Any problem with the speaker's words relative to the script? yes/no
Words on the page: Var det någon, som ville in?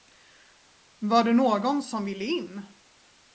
no